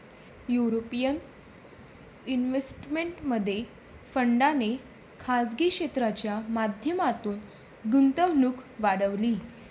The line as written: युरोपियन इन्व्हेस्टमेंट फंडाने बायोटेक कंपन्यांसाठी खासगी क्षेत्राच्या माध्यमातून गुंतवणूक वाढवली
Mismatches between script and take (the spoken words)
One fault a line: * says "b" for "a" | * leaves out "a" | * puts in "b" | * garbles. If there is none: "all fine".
* leaves out "बायोटेक कंपन्यांसाठी"